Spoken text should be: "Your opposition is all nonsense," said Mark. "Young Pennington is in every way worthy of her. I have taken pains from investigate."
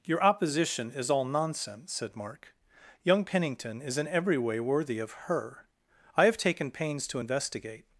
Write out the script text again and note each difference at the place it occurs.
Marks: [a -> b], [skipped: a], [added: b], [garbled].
"Your opposition is all nonsense," said Mark. "Young Pennington is in every way worthy of her. I have taken pains [from -> to] investigate."